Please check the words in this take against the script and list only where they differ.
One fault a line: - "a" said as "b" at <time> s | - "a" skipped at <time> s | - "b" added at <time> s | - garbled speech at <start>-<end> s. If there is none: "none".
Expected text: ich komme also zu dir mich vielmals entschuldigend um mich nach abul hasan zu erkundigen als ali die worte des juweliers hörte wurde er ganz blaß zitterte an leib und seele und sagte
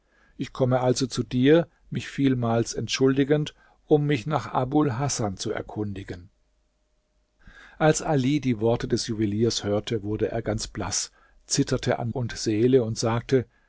- "leib" skipped at 12.1 s